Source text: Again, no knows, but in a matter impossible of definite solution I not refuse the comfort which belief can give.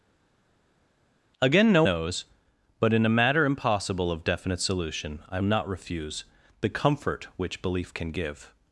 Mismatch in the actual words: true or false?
false